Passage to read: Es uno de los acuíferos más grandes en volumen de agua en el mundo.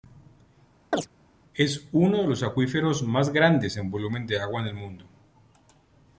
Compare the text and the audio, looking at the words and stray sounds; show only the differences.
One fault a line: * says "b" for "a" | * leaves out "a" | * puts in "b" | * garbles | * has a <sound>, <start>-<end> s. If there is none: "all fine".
* has a chirp, 0.9-1.1 s